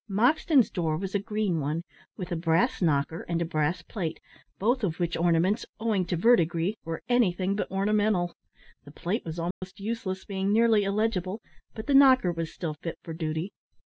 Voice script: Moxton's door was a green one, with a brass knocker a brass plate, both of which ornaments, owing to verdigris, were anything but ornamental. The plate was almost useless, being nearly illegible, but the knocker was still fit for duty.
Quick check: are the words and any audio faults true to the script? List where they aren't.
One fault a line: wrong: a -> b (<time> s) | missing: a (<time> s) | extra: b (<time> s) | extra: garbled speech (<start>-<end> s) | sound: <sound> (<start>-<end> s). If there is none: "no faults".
extra: and (3.3 s)
sound: dropout (9.5-9.6 s)